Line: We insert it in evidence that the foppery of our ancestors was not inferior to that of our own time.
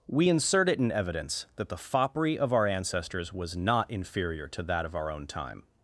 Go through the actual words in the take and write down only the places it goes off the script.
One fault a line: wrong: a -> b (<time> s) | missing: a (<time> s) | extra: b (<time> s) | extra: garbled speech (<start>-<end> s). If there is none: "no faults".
no faults